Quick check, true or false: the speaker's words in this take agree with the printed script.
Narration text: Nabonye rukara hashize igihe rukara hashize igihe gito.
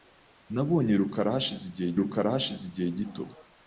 true